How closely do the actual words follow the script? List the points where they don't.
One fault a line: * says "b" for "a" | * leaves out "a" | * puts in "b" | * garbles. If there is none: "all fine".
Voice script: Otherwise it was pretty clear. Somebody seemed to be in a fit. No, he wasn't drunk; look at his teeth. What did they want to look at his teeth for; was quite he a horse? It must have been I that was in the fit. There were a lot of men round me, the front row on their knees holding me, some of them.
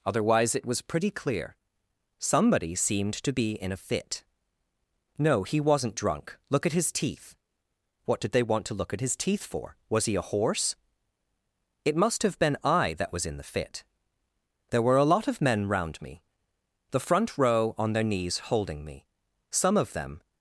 * leaves out "quite"